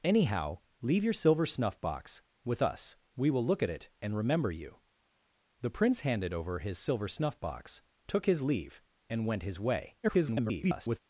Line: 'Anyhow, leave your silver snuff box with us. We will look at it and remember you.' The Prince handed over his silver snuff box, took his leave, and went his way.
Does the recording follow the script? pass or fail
fail